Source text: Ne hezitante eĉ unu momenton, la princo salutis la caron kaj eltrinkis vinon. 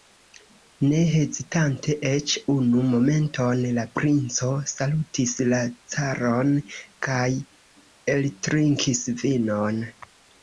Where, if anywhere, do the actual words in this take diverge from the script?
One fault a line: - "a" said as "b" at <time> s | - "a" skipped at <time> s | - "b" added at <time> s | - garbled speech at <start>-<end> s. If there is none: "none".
none